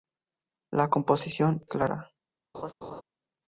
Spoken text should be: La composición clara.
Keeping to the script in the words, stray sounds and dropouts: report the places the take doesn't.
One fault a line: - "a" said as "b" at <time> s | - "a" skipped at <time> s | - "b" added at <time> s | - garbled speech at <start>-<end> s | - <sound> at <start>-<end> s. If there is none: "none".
- laugh at 2.5-3.0 s